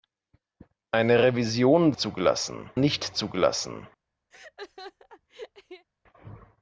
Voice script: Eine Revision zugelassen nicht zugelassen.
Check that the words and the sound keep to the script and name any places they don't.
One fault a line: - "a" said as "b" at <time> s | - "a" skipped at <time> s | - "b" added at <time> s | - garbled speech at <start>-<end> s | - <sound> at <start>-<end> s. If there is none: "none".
- laugh at 4.3-5.9 s